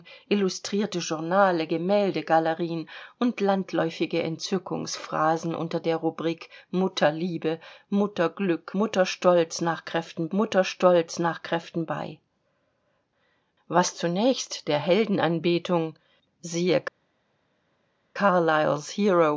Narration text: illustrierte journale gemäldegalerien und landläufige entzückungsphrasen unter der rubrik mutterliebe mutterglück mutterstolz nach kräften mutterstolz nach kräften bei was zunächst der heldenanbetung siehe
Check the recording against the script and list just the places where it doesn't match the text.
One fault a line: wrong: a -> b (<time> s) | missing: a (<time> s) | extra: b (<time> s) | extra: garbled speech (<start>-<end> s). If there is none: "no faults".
no faults